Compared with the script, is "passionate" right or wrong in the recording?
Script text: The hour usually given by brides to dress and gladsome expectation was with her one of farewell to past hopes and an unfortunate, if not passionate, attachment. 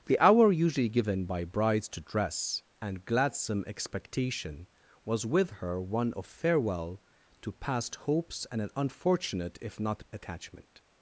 wrong